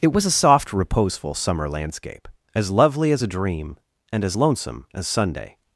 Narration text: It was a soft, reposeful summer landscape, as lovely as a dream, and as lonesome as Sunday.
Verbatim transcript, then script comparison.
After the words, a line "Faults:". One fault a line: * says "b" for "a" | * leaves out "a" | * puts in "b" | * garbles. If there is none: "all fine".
It was a soft, reposeful summer landscape, as lovely as a dream, and as lonesome as Sunday.
Faults:
all fine